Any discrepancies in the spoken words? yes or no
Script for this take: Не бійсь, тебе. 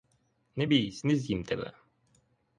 yes